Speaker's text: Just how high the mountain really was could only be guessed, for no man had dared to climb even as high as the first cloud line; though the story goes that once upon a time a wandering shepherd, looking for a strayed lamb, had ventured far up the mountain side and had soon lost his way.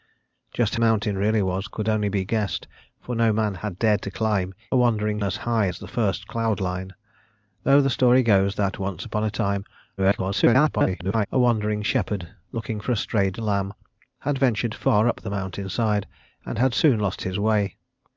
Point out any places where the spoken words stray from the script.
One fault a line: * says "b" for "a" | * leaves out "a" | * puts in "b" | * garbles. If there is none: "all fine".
* leaves out "how high the"
* says "wandering" for "even"
* garbles